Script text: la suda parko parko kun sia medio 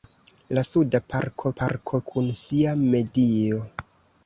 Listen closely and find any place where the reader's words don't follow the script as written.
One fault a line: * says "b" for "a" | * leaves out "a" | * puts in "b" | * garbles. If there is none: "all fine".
all fine